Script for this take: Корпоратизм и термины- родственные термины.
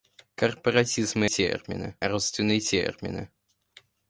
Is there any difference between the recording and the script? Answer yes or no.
no